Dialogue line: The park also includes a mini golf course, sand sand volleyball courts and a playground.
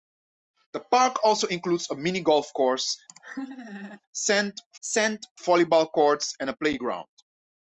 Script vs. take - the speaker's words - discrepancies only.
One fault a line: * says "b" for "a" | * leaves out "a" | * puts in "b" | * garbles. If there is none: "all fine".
all fine